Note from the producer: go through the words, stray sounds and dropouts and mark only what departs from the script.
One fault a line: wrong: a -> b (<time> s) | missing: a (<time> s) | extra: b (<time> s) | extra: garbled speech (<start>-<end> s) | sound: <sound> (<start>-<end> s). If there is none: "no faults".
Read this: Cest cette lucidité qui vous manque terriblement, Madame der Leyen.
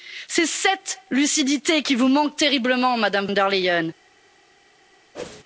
sound: whoosh (5.1-5.4 s)